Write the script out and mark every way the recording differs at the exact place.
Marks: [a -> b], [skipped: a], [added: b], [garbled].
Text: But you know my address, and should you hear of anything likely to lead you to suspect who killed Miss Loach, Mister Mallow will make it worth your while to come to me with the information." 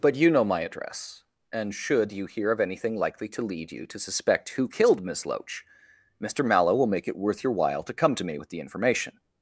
But you know my address, and should you hear of anything likely to lead you to suspect who killed Miss Loach, Mister Mallow will make it worth your while to come to me with the information."